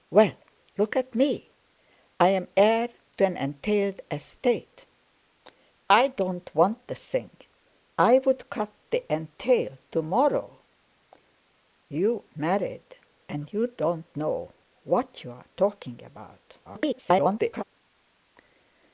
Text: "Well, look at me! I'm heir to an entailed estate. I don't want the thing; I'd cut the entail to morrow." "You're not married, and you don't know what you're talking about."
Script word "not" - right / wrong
wrong